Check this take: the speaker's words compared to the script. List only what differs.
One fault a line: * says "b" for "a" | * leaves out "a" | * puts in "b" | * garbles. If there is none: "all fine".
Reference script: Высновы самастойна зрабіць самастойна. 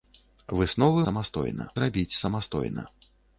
all fine